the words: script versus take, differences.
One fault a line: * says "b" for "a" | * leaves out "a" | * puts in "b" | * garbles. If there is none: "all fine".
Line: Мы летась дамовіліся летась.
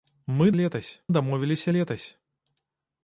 all fine